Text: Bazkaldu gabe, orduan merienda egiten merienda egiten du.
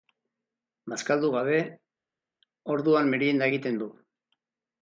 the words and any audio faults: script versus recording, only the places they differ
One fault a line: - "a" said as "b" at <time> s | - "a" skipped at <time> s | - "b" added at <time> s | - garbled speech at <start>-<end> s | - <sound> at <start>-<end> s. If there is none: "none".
- "merienda egiten" skipped at 3.8 s